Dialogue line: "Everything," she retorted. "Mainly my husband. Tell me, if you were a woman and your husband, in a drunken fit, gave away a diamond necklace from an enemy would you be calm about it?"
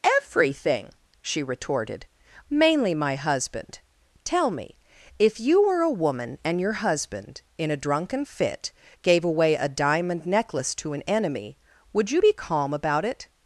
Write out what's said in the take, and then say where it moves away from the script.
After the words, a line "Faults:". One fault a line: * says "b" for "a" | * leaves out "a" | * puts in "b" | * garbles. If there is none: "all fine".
"Everything," she retorted. "Mainly my husband. Tell me, if you were a woman and your husband, in a drunken fit, gave away a diamond necklace to an enemy would you be calm about it?"
Faults:
* says "to" for "from"